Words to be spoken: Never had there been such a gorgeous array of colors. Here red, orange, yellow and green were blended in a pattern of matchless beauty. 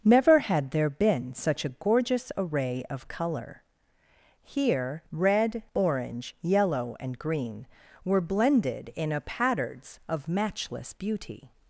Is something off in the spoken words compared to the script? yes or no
yes